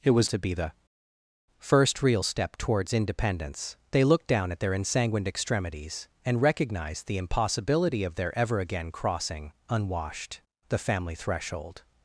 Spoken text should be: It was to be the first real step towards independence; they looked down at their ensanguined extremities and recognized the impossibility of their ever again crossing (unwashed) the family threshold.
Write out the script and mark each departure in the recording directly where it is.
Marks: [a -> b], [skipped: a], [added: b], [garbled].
It was to be the first real step towards independence; they looked down at their ensanguined extremities and recognized the impossibility of their ever again crossing (unwashed) the family threshold.